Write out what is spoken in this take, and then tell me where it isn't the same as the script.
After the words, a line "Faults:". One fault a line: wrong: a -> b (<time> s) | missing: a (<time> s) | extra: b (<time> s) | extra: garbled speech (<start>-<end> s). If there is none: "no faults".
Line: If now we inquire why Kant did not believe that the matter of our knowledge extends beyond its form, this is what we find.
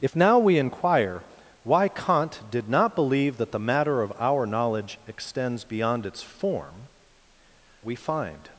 If now we inquire why Kant did not believe that the matter of our knowledge extends beyond its form, we find.
Faults:
missing: this is what (6.9 s)